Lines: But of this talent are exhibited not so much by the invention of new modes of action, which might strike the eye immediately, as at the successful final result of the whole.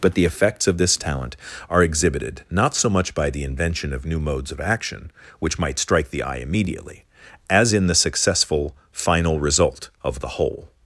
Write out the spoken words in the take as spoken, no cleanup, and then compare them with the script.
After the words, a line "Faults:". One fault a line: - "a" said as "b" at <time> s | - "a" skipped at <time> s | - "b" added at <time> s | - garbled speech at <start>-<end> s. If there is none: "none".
But the effects of this talent are exhibited not so much by the invention of new modes of action, which might strike the eye immediately, as in the successful final result of the whole.
Faults:
- "the effects" added at 0.1 s
- "at" said as "in" at 7.7 s